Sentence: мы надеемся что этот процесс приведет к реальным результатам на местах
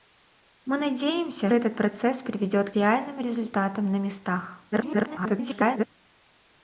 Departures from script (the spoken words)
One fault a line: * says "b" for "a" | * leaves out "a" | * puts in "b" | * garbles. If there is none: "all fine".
* leaves out "что"
* leaves out "к"
* garbles